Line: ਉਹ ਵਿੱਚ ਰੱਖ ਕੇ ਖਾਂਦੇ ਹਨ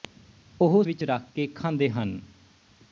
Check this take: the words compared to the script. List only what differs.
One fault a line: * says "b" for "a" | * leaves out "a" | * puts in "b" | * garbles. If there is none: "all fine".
all fine